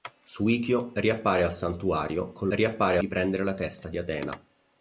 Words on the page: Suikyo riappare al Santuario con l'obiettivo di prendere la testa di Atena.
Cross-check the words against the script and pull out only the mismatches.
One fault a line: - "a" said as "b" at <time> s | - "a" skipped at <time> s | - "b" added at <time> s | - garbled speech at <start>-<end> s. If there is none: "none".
- "l'obiettivo" said as "riappare" at 2.5 s